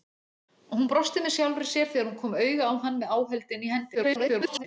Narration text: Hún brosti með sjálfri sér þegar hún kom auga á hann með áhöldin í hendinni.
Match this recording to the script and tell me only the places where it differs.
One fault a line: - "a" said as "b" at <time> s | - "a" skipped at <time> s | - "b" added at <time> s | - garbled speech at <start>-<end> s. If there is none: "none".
- garbled speech at 3.9-4.6 s